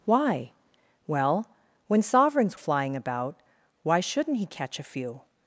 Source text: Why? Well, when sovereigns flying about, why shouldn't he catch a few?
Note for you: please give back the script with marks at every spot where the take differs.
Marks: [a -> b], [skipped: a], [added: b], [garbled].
Why? Well, when sovereigns flying about, why shouldn't he catch a few?